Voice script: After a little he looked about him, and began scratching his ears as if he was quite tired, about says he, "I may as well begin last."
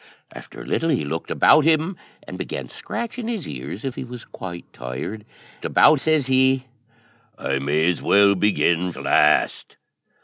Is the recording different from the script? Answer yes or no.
no